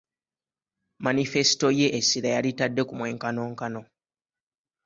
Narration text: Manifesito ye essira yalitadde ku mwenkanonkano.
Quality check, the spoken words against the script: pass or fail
pass